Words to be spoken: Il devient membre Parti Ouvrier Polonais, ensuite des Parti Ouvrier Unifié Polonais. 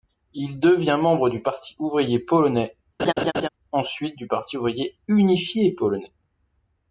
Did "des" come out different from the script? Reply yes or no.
yes